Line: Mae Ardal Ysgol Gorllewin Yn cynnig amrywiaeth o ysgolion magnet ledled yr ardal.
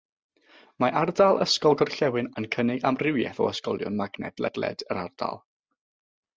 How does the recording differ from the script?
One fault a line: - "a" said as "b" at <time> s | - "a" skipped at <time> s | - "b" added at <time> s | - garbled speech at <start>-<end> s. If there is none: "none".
none